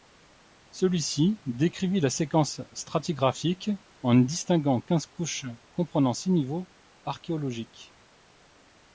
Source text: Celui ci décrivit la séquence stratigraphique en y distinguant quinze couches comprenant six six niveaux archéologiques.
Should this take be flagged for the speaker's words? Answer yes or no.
yes